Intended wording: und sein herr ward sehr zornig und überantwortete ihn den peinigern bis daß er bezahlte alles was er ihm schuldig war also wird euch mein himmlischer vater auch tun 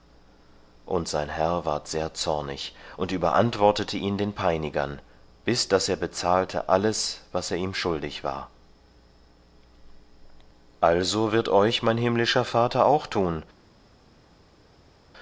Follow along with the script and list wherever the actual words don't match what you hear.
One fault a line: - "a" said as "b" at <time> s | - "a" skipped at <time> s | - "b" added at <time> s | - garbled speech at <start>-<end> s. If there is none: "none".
none